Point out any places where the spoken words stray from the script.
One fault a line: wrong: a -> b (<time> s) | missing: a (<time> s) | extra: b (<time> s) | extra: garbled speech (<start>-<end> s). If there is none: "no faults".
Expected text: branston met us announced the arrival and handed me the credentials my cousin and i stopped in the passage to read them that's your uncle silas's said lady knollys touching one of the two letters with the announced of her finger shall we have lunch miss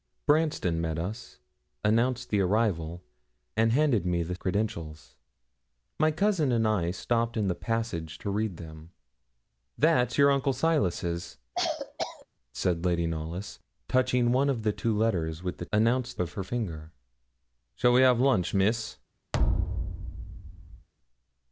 no faults